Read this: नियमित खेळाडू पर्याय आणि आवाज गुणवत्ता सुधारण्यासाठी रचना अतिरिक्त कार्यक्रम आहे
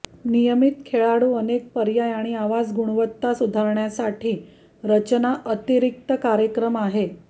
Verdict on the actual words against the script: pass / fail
fail